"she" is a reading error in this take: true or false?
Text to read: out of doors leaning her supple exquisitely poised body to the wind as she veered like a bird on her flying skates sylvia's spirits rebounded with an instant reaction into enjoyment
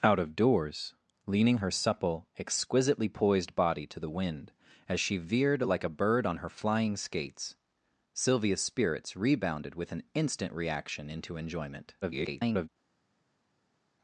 false